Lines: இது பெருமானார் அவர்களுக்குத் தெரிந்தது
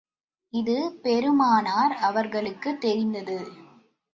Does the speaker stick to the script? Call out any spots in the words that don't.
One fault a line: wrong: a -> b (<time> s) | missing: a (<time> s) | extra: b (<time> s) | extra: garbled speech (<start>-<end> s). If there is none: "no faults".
no faults